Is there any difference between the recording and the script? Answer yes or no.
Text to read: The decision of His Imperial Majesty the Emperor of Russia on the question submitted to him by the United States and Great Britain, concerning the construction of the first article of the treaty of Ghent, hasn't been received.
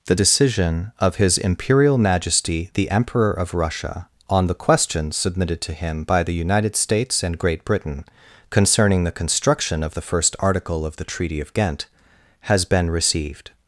yes